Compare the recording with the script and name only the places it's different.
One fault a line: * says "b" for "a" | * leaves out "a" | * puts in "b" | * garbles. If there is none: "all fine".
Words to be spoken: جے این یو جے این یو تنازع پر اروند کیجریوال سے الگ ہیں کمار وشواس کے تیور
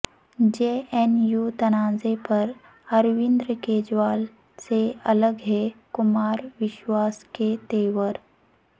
* leaves out "جے این یو"